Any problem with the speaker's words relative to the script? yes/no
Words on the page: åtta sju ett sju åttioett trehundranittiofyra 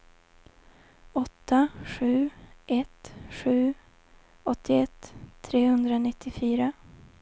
no